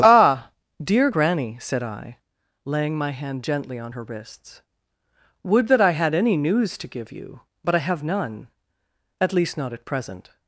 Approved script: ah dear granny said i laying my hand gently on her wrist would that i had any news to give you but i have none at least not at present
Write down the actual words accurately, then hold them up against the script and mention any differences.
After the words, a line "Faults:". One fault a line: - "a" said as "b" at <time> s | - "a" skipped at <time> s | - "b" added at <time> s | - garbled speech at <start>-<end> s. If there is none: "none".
ah dear granny said i laying my hand gently on her wrists would that i had any news to give you but i have none at least not at present
Faults:
- "wrist" said as "wrists" at 4.0 s